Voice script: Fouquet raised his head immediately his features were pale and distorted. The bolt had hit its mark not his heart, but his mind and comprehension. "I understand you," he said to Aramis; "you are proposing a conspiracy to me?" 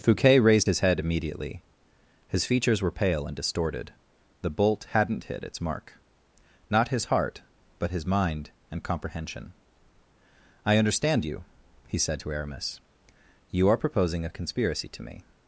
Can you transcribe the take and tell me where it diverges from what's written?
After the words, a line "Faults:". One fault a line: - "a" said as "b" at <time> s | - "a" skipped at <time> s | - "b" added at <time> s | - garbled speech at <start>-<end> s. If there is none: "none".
Fouquet raised his head immediately his features were pale and distorted. The bolt hadn't hit its mark not his heart, but his mind and comprehension. "I understand you," he said to Aramis; "you are proposing a conspiracy to me?"
Faults:
- "had" said as "hadn't" at 4.9 s